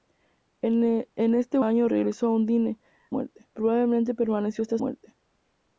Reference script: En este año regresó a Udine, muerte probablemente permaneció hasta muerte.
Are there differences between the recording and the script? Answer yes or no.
no